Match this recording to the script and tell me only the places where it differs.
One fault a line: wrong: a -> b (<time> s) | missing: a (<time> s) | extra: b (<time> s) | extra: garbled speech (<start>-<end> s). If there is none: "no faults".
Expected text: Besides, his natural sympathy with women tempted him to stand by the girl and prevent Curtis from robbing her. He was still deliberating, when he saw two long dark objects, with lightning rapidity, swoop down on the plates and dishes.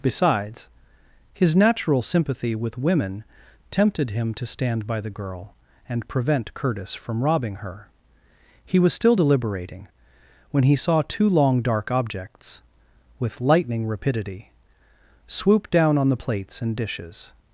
no faults